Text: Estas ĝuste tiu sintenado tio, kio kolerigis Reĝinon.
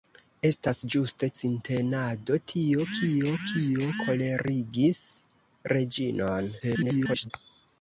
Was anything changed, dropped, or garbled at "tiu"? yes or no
yes